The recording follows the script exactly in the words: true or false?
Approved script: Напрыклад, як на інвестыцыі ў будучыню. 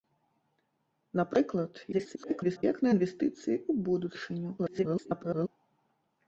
false